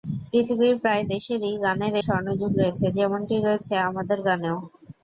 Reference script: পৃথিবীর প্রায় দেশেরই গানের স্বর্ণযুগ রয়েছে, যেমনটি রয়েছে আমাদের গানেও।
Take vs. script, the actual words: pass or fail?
pass